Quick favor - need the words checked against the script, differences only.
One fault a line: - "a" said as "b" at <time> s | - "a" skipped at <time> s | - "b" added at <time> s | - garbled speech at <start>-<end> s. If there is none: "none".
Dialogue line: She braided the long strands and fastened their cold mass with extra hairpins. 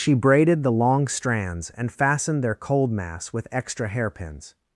none